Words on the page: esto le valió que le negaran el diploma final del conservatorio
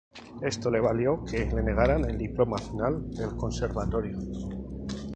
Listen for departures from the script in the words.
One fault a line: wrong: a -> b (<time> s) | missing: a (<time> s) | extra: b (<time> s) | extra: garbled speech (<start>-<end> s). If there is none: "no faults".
no faults